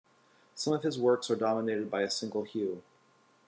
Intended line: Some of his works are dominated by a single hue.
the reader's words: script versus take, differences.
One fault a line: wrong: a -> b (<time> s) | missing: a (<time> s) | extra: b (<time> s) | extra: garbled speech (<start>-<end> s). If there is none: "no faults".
no faults